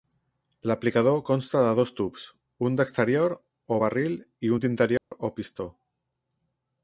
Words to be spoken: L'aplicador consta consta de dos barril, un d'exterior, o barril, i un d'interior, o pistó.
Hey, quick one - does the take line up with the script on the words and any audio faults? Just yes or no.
no